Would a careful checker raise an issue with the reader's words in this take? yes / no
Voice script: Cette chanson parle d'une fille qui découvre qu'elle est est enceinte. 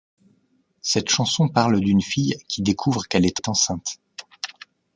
no